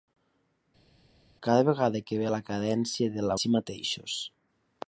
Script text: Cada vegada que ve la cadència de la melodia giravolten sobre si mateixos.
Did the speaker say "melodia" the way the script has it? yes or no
no